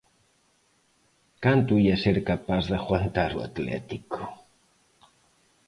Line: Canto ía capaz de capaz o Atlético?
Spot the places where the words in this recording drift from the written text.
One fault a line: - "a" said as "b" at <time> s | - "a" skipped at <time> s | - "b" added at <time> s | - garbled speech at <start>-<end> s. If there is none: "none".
- "ser" added at 2.0 s
- "capaz" said as "aguantar" at 2.8 s